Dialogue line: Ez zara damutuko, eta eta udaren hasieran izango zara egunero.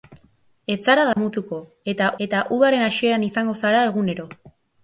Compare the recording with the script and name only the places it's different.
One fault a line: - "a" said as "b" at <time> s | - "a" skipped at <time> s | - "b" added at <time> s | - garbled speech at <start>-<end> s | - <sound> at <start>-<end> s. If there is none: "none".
- dropout at 1.1-1.2 s